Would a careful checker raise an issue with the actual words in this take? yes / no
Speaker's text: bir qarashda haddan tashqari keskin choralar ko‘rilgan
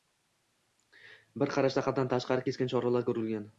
no